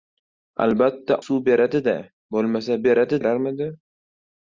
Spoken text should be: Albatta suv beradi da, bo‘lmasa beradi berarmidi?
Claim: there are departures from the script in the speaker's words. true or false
false